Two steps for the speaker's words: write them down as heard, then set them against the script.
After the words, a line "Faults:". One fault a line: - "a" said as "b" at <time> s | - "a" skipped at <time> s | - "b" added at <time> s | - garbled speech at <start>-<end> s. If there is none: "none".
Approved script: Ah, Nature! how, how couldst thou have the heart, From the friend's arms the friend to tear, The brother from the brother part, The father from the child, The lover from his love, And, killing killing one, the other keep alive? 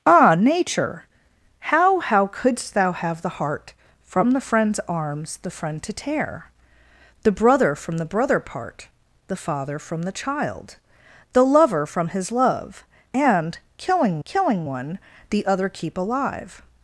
Ah, Nature! how, how couldst thou have the heart, From the friend's arms the friend to tear, The brother from the brother part, The father from the child, The lover from his love, And, killing killing one, the other keep alive?
Faults:
none